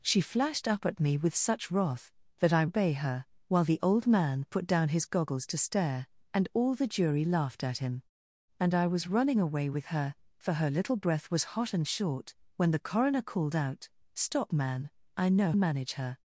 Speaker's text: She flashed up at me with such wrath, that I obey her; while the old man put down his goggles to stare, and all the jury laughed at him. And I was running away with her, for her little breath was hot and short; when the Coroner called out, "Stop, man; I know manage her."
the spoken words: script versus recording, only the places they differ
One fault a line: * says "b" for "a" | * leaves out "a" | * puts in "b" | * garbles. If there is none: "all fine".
all fine